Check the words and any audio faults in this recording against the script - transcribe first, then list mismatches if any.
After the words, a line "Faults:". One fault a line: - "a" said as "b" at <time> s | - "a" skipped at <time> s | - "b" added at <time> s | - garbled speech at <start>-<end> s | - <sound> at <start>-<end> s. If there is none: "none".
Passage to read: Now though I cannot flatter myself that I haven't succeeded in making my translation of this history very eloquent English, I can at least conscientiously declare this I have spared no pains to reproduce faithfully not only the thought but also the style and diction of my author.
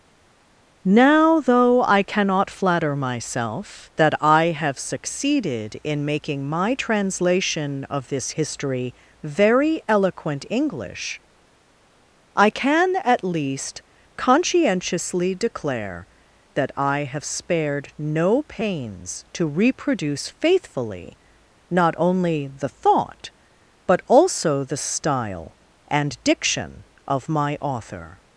Now though I cannot flatter myself that I have succeeded in making my translation of this history very eloquent English, I can at least conscientiously declare that I have spared no pains to reproduce faithfully not only the thought but also the style and diction of my author.
Faults:
- "haven't" said as "have" at 4.5 s
- "this" said as "that" at 16.5 s